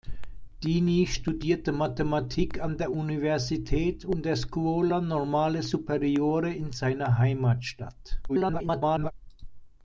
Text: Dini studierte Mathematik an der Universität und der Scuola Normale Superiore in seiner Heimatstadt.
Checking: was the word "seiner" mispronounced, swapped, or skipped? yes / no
no